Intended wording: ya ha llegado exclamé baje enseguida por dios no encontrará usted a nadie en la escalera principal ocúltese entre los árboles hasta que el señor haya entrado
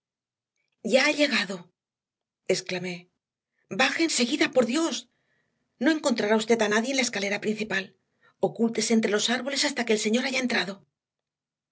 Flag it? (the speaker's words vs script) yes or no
no